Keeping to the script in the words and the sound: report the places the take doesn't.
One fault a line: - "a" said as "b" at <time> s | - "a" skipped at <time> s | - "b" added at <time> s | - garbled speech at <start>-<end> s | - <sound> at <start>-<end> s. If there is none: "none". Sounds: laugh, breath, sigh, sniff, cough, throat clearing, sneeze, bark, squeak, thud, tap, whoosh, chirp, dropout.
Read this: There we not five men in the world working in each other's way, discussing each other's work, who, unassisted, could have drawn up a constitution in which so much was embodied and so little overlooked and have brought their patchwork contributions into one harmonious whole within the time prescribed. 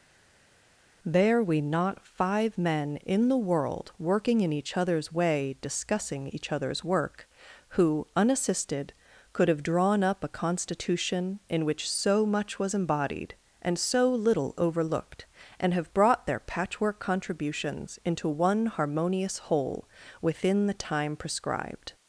none